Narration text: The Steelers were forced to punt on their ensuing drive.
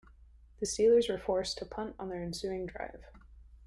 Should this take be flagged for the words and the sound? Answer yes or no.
no